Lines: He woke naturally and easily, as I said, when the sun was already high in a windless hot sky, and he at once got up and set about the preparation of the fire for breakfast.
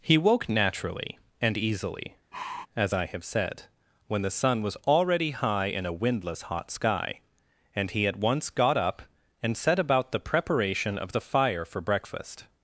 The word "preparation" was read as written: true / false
true